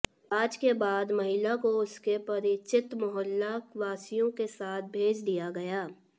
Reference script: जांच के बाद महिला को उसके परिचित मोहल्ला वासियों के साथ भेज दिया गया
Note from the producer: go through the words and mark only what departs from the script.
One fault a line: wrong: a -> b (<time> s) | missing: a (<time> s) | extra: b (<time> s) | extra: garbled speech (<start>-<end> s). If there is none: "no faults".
no faults